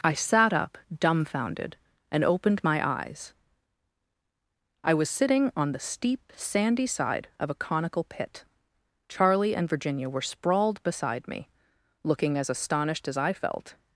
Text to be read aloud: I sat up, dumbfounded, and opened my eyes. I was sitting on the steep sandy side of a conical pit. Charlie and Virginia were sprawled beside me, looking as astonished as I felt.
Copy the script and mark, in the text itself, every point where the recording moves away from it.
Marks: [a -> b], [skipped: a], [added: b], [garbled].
I sat up, dumbfounded, and opened my eyes. I was sitting on the steep sandy side of a conical pit. Charlie and Virginia were sprawled beside me, looking as astonished as I felt.